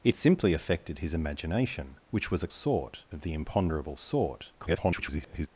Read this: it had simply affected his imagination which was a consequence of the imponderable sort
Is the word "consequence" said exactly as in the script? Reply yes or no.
no